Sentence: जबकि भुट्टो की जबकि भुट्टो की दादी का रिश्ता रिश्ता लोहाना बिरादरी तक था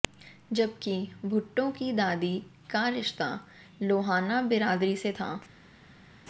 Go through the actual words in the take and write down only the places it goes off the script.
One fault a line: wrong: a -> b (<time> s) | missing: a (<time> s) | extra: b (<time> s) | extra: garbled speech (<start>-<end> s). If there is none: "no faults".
missing: जबकि भुट्टो की (1.9 s)
missing: रिश्ता (3.3 s)
wrong: तक -> से (5.0 s)